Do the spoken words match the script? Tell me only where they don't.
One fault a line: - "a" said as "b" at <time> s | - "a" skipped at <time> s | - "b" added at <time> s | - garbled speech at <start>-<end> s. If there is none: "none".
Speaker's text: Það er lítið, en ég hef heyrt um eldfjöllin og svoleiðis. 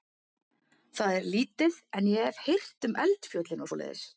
none